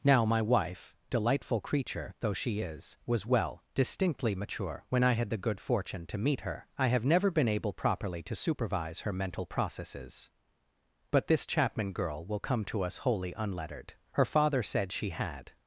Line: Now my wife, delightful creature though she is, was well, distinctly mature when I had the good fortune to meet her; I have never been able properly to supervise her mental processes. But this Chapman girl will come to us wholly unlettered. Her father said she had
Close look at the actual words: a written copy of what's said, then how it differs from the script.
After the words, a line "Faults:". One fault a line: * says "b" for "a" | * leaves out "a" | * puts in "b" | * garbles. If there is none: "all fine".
Now my wife, delightful creature though she is, was well, distinctly mature when I had the good fortune to meet her; I have never been able properly to supervise her mental processes. But this Chapman girl will come to us wholly unlettered. Her father said she had
Faults:
all fine